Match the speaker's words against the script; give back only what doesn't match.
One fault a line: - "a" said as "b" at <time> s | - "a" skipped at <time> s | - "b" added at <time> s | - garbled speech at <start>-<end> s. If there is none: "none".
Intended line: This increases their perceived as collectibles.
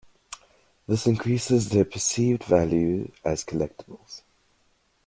- "value" added at 2.4 s